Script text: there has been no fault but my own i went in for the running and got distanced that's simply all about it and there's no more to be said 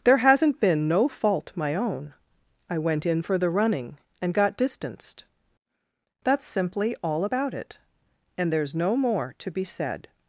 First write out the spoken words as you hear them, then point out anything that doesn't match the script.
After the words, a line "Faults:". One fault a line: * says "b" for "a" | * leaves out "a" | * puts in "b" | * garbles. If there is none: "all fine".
there hasn't been no fault my own i went in for the running and got distanced that's simply all about it and there's no more to be said
Faults:
* says "hasn't" for "has"
* leaves out "but"